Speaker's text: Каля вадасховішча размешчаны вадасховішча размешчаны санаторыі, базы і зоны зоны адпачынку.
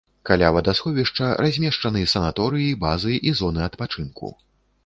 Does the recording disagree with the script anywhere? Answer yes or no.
yes